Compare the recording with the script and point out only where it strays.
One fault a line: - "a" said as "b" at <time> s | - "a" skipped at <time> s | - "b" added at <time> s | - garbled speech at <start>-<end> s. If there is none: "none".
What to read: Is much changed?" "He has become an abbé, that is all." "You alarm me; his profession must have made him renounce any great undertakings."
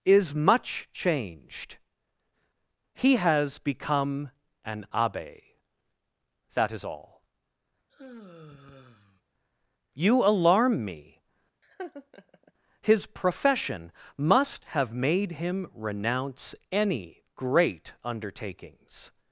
none